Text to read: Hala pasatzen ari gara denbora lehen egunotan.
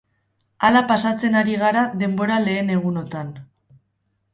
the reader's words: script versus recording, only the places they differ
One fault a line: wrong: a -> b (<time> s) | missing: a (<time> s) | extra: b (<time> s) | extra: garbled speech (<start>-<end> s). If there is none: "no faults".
no faults